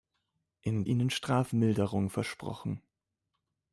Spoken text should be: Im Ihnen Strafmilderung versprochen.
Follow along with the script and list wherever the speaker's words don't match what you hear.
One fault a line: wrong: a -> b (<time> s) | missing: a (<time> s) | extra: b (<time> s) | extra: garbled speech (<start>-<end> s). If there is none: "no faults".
no faults